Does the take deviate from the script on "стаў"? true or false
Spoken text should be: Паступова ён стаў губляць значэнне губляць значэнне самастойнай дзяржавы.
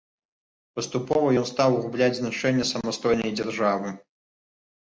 false